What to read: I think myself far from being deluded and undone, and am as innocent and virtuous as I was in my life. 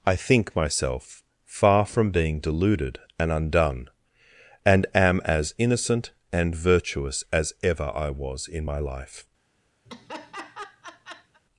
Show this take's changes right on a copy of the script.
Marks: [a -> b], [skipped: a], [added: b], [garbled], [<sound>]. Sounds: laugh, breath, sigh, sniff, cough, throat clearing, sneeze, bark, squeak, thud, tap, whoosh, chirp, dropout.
I think myself far from being deluded and undone, and am as innocent and virtuous as [added: ever] I was in my life. [laugh]